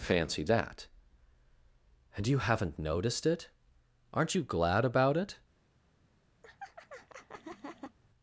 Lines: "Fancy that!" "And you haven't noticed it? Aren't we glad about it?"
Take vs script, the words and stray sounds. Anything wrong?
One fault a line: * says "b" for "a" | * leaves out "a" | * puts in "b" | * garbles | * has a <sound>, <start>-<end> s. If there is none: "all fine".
* says "you" for "we"
* has a laugh, 6.4-8.0 s